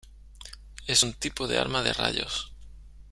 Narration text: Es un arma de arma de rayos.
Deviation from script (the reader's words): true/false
true